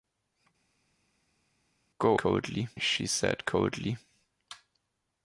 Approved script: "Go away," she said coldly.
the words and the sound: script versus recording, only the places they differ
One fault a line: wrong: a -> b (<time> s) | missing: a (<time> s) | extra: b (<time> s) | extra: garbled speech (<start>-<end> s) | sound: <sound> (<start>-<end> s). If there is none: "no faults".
wrong: away -> coldly (2.2 s)